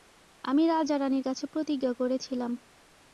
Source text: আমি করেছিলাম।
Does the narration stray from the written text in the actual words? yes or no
yes